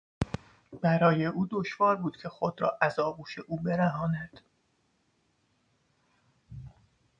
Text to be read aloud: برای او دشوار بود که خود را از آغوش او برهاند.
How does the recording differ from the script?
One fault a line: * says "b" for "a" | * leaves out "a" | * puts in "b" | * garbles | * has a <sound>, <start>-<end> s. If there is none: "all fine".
all fine